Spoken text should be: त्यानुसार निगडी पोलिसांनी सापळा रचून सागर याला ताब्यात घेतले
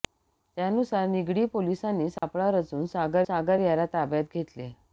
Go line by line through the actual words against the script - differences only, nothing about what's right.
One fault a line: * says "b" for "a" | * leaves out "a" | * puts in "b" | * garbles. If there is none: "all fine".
* puts in "सागर"